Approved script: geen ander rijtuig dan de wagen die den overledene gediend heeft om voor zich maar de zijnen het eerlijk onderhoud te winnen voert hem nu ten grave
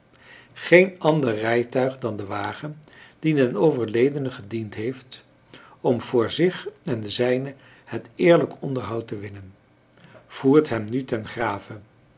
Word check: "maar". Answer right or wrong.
wrong